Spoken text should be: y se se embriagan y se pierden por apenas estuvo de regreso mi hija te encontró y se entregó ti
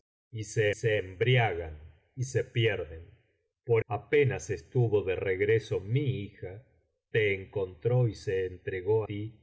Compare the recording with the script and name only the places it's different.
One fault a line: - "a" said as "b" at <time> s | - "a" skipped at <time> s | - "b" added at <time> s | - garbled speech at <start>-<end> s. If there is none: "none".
none